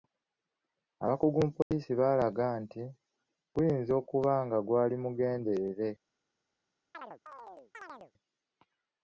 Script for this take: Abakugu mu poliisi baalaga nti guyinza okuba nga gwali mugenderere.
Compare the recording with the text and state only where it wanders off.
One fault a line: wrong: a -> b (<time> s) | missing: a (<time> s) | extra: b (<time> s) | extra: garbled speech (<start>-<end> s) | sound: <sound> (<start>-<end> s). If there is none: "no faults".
sound: dropout (1.6-1.7 s)
sound: chirp (6.9-8.1 s)